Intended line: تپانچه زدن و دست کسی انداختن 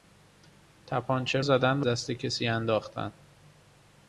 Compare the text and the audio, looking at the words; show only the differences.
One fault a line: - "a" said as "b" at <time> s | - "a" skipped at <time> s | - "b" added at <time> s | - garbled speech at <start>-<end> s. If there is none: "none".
none